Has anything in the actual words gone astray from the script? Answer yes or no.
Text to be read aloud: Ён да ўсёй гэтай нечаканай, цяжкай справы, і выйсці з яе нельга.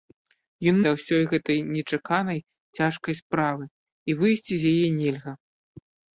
no